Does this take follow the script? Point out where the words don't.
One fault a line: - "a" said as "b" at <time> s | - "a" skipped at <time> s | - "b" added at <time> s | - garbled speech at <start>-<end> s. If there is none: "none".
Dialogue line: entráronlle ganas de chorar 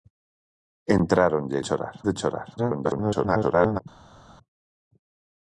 - "ganas" said as "chorar" at 1.7 s
- garbled speech at 2.6-3.8 s